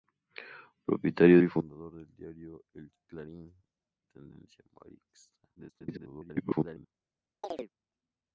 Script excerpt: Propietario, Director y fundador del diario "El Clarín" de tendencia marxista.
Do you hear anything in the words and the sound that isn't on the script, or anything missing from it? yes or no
yes